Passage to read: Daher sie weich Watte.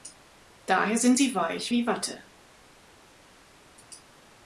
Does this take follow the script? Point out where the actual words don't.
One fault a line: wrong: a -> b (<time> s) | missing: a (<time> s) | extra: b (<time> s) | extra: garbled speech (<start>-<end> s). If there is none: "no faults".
extra: sind (1.0 s)
extra: wie (1.7 s)